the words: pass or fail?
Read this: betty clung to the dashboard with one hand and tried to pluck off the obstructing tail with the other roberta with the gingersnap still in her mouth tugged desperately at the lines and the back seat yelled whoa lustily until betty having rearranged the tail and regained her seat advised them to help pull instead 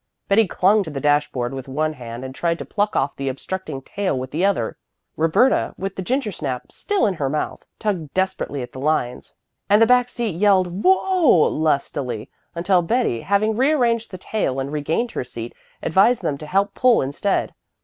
pass